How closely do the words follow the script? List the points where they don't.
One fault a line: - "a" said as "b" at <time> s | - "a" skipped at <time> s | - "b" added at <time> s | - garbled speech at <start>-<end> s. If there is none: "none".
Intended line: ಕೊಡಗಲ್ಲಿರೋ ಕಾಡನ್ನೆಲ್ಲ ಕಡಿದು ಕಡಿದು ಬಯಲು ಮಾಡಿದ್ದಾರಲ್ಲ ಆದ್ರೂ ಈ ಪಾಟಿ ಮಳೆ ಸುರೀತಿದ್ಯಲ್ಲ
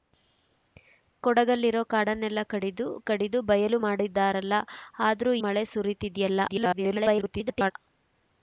- "ಈ ಪಾಟಿ" skipped at 5.3 s
- garbled speech at 6.5-7.7 s